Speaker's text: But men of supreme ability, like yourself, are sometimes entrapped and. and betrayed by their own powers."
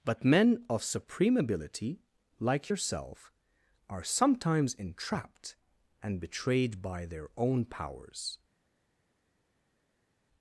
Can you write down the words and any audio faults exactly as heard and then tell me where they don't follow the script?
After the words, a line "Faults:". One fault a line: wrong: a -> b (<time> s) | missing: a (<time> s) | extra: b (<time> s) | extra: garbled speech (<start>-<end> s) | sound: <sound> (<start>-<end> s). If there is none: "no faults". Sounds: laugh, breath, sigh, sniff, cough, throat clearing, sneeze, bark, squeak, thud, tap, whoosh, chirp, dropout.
But men of supreme ability, like yourself, are sometimes entrapped and. betrayed by their own powers."
Faults:
missing: and (6.2 s)